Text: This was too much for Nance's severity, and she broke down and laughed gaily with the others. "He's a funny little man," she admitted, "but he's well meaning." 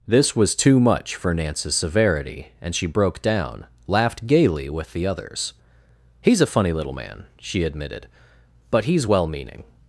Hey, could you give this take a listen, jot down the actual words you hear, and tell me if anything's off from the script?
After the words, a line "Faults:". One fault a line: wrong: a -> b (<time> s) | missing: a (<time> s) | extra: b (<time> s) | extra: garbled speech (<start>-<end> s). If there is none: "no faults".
This was too much for Nance's severity, and she broke down laughed gaily with the others. "He's a funny little man," she admitted, "but he's well meaning."
Faults:
missing: and (3.6 s)